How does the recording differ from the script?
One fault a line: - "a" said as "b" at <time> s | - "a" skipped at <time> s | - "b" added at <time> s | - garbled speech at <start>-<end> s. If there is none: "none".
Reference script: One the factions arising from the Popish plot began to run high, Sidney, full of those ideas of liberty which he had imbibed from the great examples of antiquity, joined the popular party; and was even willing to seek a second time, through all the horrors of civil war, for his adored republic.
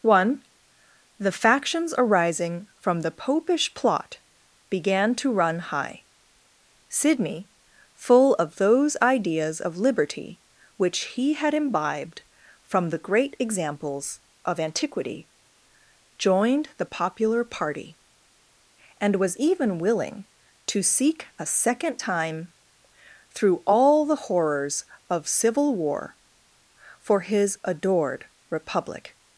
none